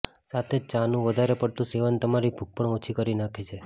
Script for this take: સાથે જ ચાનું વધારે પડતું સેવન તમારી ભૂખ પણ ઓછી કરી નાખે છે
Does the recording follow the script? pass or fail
pass